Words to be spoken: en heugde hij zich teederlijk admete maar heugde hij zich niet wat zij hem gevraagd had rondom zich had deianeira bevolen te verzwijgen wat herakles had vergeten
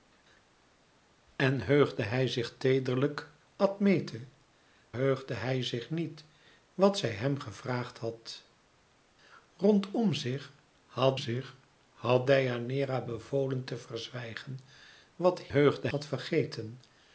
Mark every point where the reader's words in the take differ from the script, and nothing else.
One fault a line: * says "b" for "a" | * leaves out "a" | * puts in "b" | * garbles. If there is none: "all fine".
* leaves out "maar"
* puts in "zich had"
* says "heugde" for "herakles"